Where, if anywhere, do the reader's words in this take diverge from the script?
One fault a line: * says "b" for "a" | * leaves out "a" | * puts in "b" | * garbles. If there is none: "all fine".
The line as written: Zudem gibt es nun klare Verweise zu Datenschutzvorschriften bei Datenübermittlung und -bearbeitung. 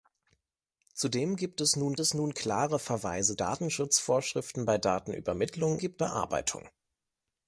* puts in "es nun"
* leaves out "zu"
* says "gibt" for "und"